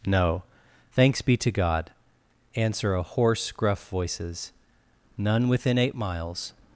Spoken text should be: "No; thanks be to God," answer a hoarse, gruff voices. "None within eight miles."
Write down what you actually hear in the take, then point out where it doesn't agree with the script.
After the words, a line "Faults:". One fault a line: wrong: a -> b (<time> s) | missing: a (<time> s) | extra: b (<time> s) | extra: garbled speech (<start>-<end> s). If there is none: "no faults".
"No; thanks be to God," answer a hoarse, gruff voices. "None within eight miles."
Faults:
no faults